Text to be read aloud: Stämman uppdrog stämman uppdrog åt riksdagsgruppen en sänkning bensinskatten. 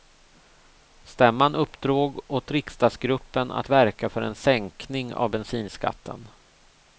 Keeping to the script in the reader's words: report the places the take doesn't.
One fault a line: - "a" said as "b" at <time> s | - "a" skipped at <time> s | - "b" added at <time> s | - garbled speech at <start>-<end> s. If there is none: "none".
- "stämman uppdrog åt riksdagsgruppen" said as "åt riksdagsgruppen att verka för" at 2.3 s
- "av" added at 5.1 s